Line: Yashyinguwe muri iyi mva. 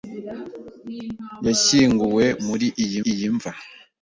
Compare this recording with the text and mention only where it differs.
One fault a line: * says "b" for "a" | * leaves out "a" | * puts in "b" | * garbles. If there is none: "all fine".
* puts in "iyi"